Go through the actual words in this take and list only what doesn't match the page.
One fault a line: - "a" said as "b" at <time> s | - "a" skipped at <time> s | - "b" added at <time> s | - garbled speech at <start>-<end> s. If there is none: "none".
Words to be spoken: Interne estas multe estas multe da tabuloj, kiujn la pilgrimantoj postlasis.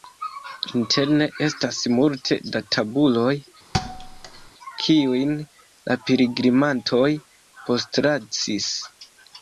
- "estas multe" skipped at 2.4 s